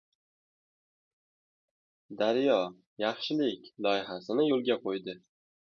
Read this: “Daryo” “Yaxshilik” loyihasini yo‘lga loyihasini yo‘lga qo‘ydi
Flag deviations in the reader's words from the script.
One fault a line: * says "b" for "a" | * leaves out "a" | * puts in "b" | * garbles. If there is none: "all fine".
* leaves out "loyihasini yo‘lga"